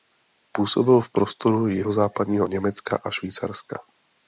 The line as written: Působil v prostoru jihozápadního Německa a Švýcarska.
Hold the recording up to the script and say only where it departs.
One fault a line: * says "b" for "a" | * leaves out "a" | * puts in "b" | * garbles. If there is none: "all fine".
all fine